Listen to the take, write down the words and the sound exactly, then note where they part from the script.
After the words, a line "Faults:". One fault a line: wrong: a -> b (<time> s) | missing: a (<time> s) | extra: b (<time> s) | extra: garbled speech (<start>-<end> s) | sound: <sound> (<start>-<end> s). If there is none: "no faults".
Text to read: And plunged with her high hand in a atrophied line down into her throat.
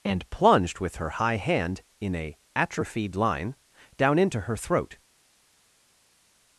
And plunged with her high hand in a atrophied line down into her throat.
Faults:
no faults